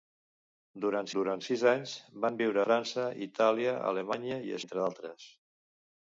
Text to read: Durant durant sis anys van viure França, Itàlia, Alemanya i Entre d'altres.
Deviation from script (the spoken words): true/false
false